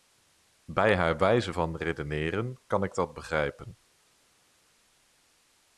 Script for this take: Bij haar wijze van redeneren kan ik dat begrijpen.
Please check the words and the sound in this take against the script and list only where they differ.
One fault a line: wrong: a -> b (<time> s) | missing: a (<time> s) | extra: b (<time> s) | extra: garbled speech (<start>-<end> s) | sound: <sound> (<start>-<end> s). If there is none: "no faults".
no faults